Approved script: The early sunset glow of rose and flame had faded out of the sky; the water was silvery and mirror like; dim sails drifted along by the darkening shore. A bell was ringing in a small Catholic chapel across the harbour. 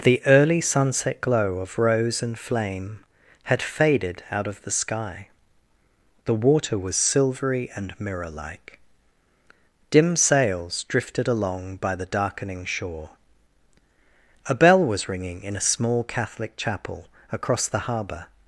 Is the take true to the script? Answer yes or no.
yes